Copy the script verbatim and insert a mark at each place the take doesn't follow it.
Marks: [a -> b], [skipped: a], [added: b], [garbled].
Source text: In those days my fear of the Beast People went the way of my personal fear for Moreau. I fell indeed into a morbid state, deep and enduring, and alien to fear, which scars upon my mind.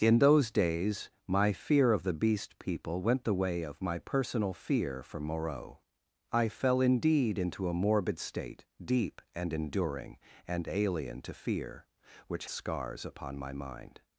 In those days my fear of the Beast People went the way of my personal fear for Moreau. I fell indeed into a morbid state, deep and enduring, and alien to fear, which scars upon my mind.